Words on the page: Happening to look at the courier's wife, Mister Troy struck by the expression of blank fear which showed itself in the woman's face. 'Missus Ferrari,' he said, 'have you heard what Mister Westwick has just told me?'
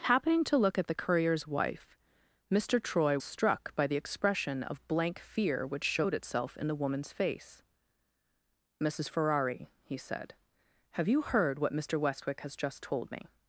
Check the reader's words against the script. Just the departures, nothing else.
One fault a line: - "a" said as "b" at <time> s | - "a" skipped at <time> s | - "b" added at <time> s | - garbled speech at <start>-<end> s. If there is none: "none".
none